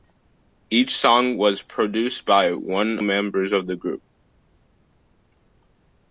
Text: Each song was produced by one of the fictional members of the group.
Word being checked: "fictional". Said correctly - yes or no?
no